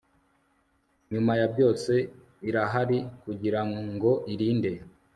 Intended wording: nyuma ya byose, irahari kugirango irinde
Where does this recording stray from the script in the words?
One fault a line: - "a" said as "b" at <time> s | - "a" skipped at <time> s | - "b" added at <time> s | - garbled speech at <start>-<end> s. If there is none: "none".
none